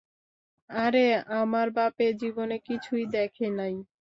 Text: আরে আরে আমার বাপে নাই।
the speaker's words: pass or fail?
fail